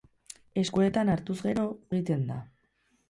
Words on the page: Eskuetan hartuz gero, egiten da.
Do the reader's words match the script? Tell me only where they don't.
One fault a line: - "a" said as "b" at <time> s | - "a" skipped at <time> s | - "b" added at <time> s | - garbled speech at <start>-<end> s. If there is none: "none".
none